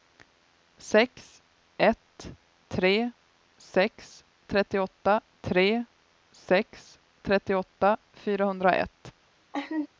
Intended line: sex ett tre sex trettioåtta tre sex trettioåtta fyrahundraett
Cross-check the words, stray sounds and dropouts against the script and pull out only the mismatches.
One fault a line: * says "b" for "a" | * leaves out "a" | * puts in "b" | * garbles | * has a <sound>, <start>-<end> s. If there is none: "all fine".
* has a laugh, 9.5-9.9 s